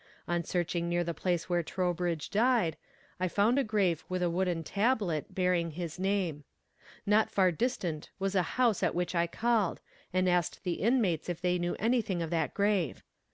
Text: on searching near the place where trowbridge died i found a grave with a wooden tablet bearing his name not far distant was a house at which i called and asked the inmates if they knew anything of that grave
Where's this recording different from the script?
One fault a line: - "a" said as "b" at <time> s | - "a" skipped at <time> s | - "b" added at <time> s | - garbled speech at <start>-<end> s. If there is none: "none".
none